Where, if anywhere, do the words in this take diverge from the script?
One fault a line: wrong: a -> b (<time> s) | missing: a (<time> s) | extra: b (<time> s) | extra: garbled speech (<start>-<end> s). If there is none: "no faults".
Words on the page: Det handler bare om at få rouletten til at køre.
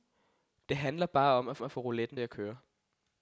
extra: at (1.6 s)
missing: til (2.2 s)